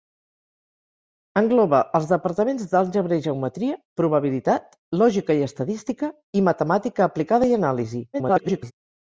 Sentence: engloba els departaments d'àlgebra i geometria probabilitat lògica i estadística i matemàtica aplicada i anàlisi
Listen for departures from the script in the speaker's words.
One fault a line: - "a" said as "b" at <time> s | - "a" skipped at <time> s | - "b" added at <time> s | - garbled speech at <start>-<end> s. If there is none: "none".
- garbled speech at 8.1-8.7 s